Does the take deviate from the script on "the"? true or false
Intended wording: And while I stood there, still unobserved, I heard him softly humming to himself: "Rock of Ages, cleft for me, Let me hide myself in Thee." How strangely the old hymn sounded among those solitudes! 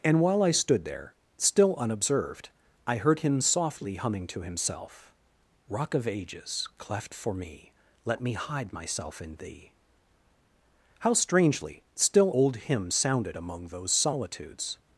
true